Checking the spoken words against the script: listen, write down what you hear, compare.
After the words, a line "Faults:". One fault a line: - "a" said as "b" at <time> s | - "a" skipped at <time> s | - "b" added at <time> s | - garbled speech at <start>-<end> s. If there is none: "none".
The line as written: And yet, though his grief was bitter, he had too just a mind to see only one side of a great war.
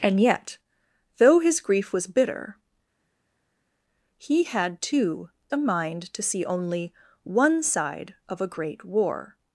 And yet, though his grief was bitter, he had too a mind to see only one side of a great war.
Faults:
- "just" skipped at 5.3 s